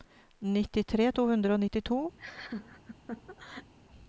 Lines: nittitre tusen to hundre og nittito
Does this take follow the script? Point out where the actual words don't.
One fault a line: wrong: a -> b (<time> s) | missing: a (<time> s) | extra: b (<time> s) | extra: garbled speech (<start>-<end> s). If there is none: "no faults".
missing: tusen (1.1 s)